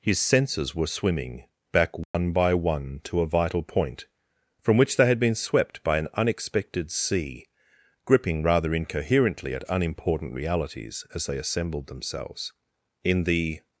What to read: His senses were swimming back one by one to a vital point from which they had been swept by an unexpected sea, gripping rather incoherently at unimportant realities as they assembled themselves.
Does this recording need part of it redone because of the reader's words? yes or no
yes